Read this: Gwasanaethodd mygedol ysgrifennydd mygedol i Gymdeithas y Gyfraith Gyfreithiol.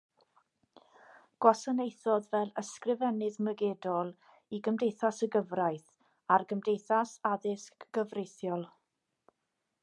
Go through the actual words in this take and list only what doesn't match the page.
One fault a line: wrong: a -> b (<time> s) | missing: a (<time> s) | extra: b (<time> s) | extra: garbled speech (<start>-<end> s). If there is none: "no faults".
wrong: mygedol -> fel (2.3 s)
extra: a'r Gymdeithas Addysg (6.4 s)